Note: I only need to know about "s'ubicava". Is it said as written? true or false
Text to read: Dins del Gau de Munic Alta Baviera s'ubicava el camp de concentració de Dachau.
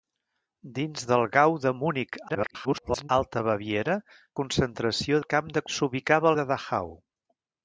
false